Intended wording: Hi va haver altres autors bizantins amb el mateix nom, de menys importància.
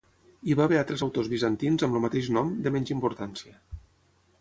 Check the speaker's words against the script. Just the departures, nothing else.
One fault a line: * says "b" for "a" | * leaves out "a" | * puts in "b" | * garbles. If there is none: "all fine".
all fine